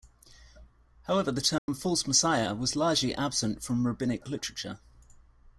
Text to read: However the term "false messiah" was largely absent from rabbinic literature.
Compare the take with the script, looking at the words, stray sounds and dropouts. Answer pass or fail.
fail